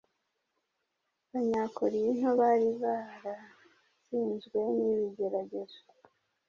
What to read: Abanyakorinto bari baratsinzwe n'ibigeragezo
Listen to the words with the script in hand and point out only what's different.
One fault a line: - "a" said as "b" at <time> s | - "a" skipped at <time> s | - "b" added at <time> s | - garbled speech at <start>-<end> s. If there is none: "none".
none